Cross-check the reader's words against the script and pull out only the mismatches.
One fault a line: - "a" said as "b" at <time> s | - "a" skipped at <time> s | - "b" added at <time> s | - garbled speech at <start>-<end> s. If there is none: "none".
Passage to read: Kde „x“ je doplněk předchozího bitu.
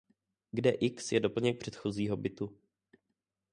none